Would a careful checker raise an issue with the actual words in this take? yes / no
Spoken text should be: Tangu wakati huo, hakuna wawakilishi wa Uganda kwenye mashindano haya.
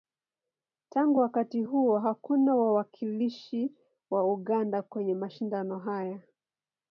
no